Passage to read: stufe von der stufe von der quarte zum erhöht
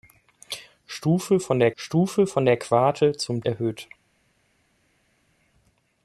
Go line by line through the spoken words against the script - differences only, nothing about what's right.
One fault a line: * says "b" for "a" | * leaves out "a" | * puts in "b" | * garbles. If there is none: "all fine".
all fine